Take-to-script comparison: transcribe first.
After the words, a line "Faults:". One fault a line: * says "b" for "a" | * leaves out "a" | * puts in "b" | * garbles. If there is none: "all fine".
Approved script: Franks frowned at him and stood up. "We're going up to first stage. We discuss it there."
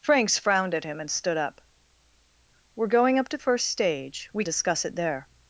Franks frowned at him and stood up. "We're going up to first stage. We discuss it there."
Faults:
all fine